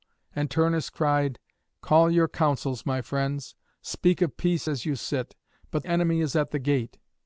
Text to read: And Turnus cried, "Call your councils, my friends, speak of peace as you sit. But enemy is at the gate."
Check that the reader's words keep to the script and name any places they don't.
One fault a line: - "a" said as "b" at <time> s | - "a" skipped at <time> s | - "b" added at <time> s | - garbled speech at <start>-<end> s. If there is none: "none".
none